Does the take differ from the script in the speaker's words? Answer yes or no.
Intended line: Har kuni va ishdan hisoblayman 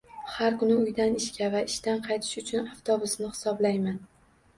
yes